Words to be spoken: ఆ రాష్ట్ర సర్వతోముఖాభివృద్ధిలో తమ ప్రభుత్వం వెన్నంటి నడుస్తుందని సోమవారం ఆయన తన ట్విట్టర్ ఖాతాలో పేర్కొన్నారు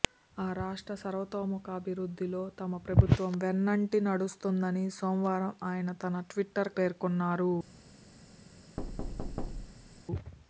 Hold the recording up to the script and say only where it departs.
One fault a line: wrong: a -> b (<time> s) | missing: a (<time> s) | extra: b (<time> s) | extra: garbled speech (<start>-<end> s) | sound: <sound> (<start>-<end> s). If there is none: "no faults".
missing: ఖాతాలో (6.7 s)
sound: thud (8.8-10.0 s)